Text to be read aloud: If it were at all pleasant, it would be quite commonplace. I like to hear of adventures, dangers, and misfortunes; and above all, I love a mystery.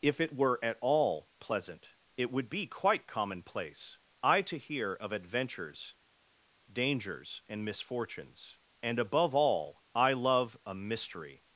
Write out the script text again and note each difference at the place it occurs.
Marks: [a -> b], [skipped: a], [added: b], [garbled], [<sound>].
If it were at all pleasant, it would be quite commonplace. I [skipped: like] to hear of adventures, dangers, and misfortunes; and above all, I love a mystery.